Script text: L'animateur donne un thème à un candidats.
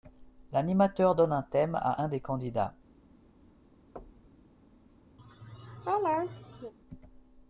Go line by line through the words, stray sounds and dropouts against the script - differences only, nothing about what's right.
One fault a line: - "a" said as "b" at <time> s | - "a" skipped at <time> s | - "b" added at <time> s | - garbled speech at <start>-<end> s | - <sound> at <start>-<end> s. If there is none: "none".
- "des" added at 2.1 s
- thud at 4.0-4.5 s
- laugh at 5.2-6.7 s